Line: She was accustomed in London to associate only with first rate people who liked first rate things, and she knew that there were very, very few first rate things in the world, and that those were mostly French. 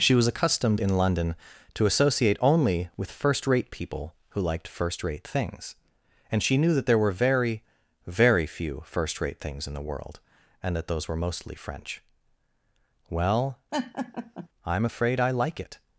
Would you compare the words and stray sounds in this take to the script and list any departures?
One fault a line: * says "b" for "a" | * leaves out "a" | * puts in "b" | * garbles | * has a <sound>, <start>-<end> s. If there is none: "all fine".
* puts in "Well I'm afraid I like it"
* has a laugh, 13.7-14.5 s